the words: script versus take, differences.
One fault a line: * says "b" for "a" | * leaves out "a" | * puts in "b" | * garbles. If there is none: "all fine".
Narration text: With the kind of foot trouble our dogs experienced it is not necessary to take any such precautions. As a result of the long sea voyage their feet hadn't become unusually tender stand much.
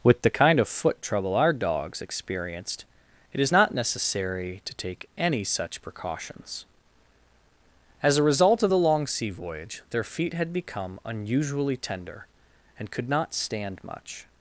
* says "had" for "hadn't"
* puts in "and could not"